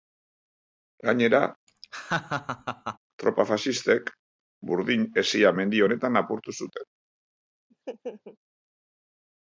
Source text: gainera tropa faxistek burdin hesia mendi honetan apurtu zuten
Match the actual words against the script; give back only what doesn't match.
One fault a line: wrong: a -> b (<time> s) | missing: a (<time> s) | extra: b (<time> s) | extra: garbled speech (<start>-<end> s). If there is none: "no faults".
no faults